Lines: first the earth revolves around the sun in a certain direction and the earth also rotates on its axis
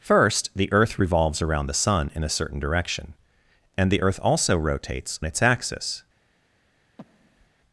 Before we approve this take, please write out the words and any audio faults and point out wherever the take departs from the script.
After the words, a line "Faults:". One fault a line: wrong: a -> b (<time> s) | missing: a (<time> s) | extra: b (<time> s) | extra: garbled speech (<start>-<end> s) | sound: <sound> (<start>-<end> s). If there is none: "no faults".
first the earth revolves around the sun in a certain direction and the earth also rotates its axis
Faults:
missing: on (5.2 s)
sound: breath (7.0-7.5 s)